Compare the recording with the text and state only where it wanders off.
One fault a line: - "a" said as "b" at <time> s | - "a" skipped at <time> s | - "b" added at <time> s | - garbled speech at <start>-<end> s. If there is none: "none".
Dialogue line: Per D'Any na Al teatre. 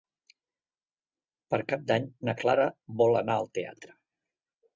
- "Cap" added at 1.7 s
- "Clara vol anar" added at 2.4 s